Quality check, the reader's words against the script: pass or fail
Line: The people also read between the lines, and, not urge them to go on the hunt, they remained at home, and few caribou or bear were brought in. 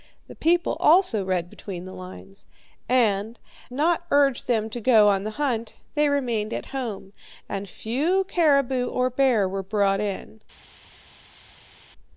pass